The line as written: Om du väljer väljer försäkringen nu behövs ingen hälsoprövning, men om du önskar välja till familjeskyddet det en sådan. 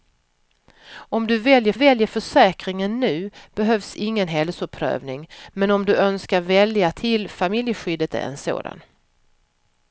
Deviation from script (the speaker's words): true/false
false